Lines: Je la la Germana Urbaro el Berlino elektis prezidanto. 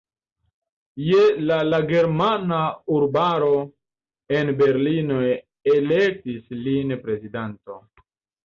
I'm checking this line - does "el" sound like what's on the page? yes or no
no